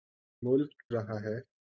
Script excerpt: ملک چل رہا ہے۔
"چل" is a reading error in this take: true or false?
true